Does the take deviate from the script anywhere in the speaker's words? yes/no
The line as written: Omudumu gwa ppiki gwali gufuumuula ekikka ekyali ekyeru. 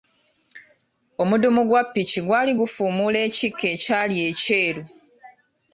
no